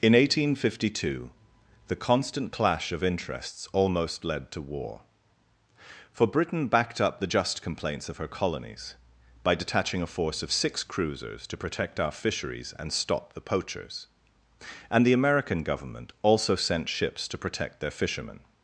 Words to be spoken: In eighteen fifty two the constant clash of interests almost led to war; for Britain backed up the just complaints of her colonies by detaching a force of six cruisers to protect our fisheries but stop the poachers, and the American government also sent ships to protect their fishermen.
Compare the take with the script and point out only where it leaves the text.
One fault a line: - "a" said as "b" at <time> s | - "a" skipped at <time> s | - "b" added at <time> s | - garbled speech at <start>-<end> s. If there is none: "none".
- "but" said as "and" at 12.8 s